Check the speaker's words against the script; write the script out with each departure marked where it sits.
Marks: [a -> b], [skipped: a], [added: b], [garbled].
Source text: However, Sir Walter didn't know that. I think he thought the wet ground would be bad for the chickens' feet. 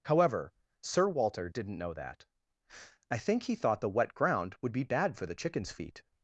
However, Sir Walter didn't know that. I think he thought the wet ground would be bad for the chickens' feet.